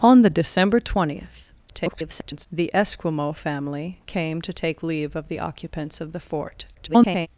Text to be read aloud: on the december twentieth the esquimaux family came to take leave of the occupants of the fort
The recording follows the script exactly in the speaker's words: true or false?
false